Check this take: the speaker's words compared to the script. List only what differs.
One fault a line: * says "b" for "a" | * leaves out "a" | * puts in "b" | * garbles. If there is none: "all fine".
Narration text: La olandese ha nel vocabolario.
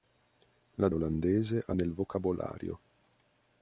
all fine